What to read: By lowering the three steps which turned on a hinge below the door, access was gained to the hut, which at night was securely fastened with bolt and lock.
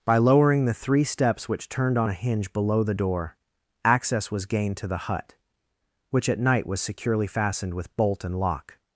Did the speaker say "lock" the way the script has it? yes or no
yes